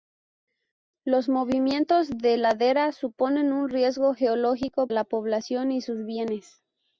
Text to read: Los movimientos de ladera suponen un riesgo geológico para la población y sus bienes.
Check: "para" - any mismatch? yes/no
yes